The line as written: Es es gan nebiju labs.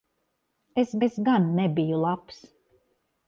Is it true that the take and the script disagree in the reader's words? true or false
false